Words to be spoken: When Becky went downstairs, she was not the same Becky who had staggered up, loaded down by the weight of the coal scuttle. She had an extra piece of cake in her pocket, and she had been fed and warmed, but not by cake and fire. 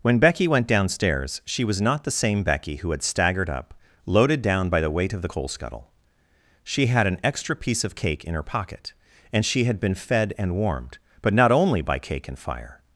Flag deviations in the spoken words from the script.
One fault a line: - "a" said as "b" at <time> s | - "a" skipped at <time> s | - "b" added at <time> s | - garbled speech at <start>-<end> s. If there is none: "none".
- "only" added at 11.5 s